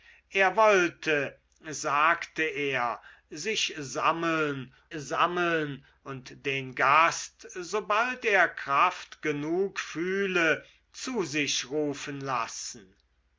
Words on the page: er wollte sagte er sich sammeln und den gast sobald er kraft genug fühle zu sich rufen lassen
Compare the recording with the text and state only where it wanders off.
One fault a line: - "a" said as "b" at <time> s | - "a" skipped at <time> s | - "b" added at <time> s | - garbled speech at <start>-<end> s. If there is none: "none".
- "sammeln" added at 4.9 s